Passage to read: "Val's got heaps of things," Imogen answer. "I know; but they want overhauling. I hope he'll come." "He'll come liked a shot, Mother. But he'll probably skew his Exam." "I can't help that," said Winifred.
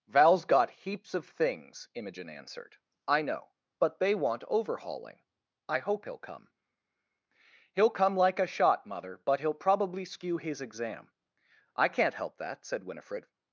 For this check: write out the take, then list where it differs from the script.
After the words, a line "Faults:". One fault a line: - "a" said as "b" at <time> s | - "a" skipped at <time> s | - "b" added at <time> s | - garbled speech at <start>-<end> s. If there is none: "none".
"Val's got heaps of things," Imogen answered. "I know; but they want overhauling. I hope he'll come." "He'll come like a shot, Mother. But he'll probably skew his Exam." "I can't help that," said Winifred.
Faults:
- "answer" said as "answered" at 2.3 s
- "liked" said as "like" at 8.1 s